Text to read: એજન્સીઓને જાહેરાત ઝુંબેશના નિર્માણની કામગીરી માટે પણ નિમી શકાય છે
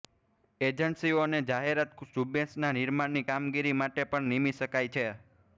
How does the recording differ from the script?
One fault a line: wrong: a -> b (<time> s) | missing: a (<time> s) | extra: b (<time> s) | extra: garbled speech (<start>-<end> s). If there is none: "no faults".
no faults